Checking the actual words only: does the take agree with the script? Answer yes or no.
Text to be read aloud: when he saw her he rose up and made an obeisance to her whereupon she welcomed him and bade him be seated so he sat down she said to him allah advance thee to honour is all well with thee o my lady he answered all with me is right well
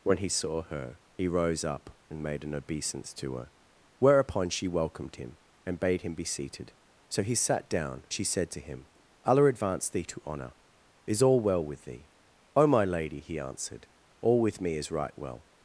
yes